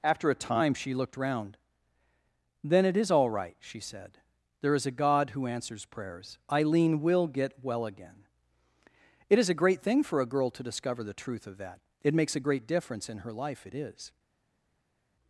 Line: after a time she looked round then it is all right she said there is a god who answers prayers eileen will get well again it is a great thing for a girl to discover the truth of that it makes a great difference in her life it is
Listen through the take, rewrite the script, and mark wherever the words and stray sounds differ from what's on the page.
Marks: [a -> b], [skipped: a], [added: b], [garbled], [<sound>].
after a time she looked round then it is all right she said there is a god who answers prayers eileen will get well again it is a great thing for a girl to discover the truth of that it makes a great difference in her life it is